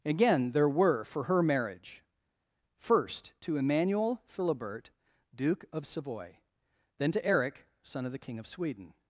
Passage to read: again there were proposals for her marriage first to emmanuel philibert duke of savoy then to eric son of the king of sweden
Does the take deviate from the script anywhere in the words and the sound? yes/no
yes